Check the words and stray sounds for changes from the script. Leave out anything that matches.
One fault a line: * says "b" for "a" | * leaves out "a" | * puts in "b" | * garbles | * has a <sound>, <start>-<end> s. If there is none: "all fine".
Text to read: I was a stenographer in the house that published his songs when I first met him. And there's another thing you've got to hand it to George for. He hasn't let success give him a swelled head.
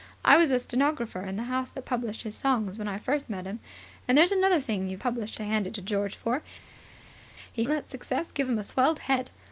* says "published" for "got"
* leaves out "hasn't"